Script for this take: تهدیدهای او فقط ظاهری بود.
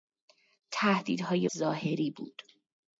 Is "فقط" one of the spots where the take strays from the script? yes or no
yes